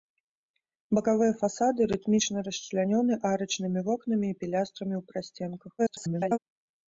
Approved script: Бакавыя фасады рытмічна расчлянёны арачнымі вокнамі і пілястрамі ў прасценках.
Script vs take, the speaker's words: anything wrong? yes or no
yes